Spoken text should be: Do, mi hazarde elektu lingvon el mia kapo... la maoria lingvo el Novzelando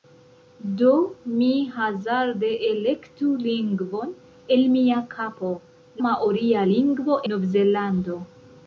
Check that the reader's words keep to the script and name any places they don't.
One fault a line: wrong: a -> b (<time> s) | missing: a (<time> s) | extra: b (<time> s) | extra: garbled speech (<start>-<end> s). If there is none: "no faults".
missing: la (5.5 s)
missing: el (7.2 s)